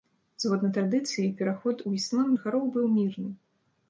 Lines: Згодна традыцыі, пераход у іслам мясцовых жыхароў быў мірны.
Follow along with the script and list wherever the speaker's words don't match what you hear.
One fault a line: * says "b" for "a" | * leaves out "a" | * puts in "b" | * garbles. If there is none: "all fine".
* leaves out "мясцовых"